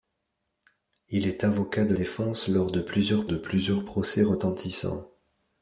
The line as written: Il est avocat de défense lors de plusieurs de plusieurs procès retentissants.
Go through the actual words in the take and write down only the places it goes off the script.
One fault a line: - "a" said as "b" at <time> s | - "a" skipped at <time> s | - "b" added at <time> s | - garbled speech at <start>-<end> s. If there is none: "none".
none